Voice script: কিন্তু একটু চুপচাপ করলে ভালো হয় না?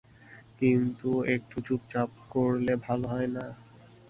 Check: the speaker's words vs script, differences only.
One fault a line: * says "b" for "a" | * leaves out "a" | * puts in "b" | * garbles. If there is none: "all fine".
all fine